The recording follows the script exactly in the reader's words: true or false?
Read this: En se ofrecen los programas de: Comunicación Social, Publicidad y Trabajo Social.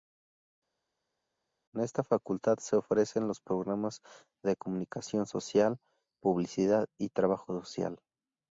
false